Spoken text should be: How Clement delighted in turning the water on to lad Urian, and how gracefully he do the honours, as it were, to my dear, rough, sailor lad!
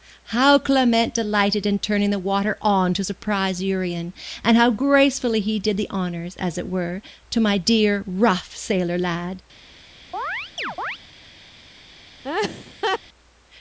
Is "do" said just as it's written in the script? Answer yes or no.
no